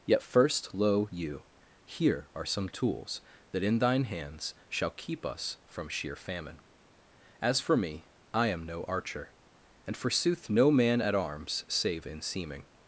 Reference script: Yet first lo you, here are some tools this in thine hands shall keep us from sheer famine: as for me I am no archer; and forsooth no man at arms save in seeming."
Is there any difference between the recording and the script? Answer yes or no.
yes